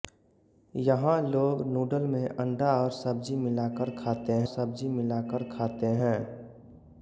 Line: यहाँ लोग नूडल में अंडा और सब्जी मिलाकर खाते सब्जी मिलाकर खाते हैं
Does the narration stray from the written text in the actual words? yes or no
no